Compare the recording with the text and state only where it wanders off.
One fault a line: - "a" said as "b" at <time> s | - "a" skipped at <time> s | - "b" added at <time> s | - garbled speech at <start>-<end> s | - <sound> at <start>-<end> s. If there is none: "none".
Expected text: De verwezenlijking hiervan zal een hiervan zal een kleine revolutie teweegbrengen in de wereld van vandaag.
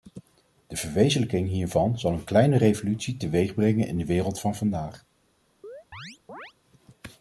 - "hiervan zal een" skipped at 2.2 s
- chirp at 5.6-6.5 s